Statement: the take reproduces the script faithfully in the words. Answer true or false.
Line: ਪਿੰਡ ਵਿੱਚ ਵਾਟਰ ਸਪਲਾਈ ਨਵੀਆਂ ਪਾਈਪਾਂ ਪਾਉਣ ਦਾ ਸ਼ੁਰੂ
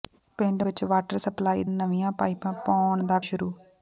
true